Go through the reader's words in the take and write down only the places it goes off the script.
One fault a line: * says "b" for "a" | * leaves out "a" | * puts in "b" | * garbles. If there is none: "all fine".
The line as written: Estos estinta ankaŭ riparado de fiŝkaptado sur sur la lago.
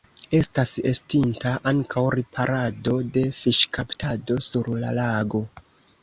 * says "Estas" for "Estos"
* leaves out "sur"